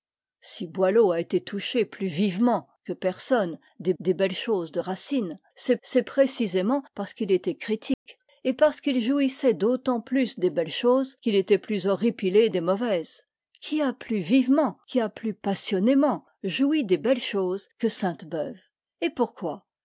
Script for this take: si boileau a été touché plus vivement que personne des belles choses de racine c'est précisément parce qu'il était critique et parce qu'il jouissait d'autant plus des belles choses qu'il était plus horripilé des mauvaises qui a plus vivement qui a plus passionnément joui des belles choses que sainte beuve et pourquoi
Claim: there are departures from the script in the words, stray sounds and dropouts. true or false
true